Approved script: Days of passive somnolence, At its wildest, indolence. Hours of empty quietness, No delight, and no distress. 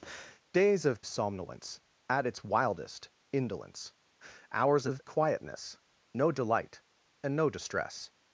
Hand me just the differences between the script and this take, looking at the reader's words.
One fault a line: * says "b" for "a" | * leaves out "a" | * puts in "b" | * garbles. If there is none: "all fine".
* leaves out "passive"
* leaves out "empty"